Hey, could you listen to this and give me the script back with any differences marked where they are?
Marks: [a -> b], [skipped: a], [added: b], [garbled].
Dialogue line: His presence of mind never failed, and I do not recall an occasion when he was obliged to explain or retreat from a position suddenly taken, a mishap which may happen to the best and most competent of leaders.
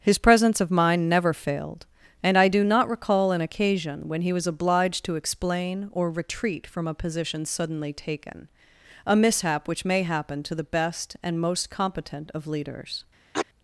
His presence of mind never failed, and I do not recall an occasion when he was obliged to explain or retreat from a position suddenly taken, a mishap which may happen to the best and most competent of leaders.